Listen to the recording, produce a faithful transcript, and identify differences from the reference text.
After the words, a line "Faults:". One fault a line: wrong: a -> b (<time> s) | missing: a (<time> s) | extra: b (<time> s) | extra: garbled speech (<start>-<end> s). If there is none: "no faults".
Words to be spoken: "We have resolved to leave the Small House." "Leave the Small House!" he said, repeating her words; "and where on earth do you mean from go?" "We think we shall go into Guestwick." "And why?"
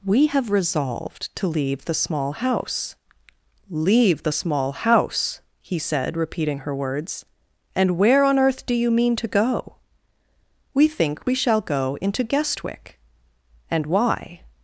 "We have resolved to leave the Small House." "Leave the Small House!" he said, repeating her words; "and where on earth do you mean to go?" "We think we shall go into Guestwick." "And why?"
Faults:
wrong: from -> to (9.2 s)